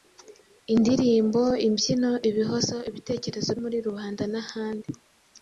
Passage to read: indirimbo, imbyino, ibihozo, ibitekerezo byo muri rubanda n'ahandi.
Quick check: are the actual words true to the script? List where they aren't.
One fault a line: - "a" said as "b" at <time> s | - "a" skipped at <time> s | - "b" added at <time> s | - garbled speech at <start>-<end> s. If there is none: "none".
- "byo" skipped at 3.5 s